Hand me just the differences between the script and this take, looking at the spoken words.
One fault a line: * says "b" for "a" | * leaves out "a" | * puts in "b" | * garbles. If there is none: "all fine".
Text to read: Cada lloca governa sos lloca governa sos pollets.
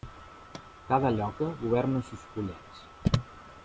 * leaves out "lloca governa sos"